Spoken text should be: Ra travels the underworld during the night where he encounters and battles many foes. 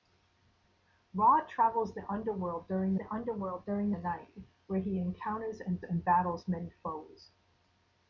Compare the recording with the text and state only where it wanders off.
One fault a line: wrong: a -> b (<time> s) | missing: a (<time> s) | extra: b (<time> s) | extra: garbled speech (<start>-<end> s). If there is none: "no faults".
extra: underworld during the (3.1 s)
extra: and (5.8 s)